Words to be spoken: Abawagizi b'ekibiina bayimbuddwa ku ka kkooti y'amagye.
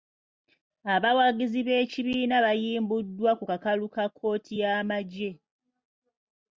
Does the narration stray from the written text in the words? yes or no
yes